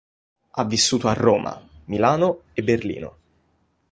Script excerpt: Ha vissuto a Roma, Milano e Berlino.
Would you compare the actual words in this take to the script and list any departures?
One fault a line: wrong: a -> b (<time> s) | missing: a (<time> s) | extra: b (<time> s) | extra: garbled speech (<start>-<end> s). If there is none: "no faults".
no faults